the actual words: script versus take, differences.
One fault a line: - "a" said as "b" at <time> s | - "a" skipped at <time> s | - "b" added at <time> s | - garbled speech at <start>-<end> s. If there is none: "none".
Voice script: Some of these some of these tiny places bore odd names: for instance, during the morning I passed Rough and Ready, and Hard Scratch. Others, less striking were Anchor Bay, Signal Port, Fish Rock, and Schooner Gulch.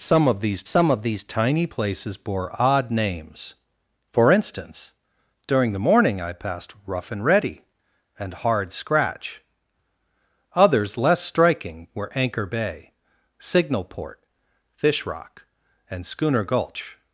none